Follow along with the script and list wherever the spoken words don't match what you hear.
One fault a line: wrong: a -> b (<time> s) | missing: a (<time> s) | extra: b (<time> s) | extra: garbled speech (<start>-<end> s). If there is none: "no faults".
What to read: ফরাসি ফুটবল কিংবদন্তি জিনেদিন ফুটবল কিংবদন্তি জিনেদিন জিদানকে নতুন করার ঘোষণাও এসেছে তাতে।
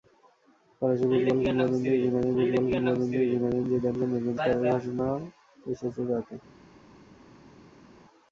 no faults